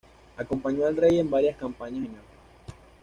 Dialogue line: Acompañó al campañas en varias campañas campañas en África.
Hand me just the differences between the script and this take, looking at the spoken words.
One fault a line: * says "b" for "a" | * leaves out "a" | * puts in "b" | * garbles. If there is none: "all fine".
* says "rey" for "campañas"
* leaves out "campañas"